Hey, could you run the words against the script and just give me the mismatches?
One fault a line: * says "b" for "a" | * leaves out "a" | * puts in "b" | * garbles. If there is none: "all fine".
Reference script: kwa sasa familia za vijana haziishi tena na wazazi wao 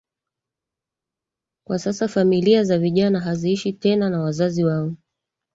all fine